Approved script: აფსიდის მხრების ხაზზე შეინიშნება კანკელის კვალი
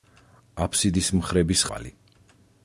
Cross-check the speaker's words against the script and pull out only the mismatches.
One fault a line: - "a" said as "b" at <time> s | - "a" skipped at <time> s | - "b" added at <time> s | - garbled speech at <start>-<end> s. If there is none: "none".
- "ხაზზე შეინიშნება კანკელის" skipped at 1.6 s